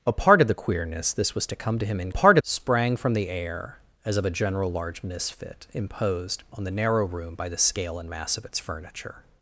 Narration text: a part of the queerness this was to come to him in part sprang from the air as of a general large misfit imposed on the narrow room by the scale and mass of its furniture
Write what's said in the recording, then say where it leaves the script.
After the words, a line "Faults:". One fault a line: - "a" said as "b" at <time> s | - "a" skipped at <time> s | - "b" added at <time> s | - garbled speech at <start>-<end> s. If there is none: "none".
a part of the queerness this was to come to him in part sprang from the air as of a general large misfit imposed on the narrow room by the scale and mass of its furniture
Faults:
none